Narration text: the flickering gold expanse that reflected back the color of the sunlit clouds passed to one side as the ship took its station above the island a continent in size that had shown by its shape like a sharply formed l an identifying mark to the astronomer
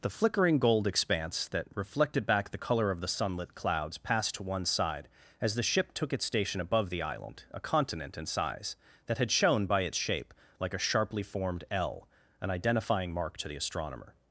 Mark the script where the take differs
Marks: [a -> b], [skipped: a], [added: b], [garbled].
the flickering gold expanse that reflected back the color of the sunlit clouds passed to one side as the ship took its station above the island a continent in size that had shown by its shape like a sharply formed l an identifying mark to the astronomer